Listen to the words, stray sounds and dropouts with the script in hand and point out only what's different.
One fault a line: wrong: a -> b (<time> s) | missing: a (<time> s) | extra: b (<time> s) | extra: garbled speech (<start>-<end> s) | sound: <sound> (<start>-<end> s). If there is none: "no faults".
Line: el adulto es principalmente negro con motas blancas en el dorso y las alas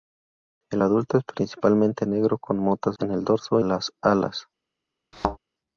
missing: blancas (3.0 s)
missing: y (3.6 s)
sound: thud (5.1-5.4 s)